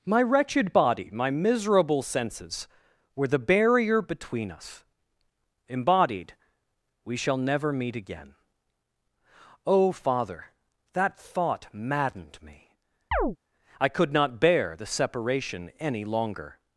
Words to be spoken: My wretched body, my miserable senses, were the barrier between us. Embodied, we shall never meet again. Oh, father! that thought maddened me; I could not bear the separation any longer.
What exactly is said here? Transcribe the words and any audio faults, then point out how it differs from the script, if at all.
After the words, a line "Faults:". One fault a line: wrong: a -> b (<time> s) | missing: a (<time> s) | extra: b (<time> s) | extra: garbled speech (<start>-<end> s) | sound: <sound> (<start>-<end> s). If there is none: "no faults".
My wretched body, my miserable senses, were the barrier between us. Embodied, we shall never meet again. Oh, father! that thought maddened me; I could not bear the separation any longer.
Faults:
sound: chirp (13.1-13.4 s)